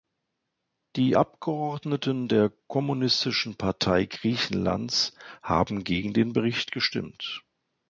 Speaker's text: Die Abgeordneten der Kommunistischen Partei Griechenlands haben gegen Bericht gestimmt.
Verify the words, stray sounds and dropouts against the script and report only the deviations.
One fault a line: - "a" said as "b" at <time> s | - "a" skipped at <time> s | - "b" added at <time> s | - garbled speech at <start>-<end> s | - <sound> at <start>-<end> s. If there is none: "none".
- "den" added at 6.1 s